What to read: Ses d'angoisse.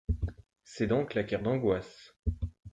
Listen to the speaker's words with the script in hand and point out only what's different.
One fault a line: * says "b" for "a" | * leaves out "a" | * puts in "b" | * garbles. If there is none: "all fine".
* puts in "dents claquèrent"